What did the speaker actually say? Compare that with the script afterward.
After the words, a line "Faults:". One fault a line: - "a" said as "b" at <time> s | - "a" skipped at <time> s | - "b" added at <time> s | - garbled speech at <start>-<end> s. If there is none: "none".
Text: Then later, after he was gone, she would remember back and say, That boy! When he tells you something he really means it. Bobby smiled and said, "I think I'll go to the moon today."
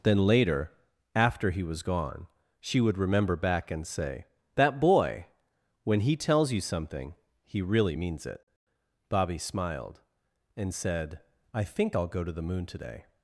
Then later, after he was gone, she would remember back and say, That boy! When he tells you something he really means it. Bobby smiled and said, "I think I'll go to the moon today."
Faults:
none